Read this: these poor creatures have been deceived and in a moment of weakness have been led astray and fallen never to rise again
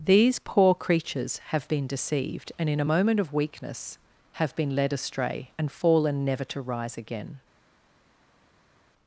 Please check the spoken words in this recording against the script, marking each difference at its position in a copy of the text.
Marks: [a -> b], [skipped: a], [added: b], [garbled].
these poor creatures have been deceived and in a moment of weakness have been led astray and fallen never to rise again